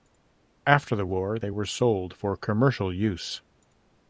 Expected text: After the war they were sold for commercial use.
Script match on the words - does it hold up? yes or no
yes